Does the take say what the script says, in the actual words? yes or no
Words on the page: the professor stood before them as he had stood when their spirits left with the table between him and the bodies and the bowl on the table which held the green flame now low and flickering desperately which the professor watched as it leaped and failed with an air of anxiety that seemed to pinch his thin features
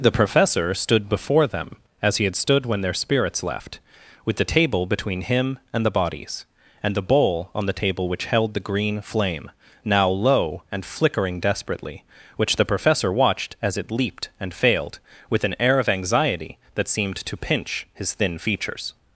yes